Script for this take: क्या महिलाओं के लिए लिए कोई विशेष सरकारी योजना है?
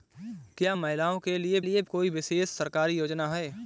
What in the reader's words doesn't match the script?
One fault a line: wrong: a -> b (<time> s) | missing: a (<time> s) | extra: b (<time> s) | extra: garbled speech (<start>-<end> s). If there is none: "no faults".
no faults